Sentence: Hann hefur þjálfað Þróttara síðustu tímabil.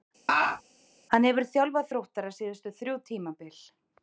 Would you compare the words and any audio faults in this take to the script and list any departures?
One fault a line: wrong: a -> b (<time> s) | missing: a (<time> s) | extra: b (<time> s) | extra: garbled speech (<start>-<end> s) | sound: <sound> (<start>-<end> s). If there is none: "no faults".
sound: laugh (0.3-0.6 s)
extra: þrjú (2.8 s)